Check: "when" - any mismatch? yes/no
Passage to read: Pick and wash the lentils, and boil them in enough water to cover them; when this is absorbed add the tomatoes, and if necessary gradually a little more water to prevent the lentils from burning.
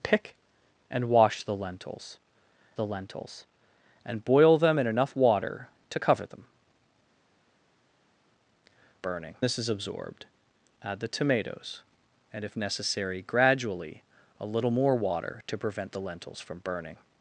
yes